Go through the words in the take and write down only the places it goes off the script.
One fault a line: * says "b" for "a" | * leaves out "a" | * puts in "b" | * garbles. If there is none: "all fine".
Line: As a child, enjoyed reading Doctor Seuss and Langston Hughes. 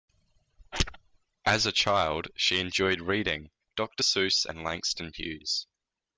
* puts in "she"